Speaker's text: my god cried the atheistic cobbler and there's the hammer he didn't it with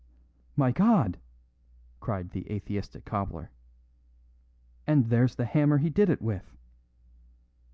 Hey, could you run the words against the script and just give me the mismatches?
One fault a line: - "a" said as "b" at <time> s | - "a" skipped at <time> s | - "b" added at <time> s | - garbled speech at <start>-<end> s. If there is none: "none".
- "didn't" said as "did" at 5.9 s